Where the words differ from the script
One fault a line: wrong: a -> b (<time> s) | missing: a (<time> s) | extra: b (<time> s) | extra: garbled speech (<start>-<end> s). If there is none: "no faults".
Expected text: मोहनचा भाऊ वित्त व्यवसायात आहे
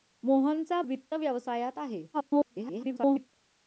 missing: भाऊ (0.8 s)
extra: garbled speech (2.1-3.3 s)